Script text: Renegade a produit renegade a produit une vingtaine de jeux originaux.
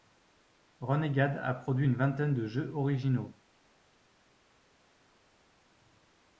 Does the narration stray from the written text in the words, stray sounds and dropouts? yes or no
yes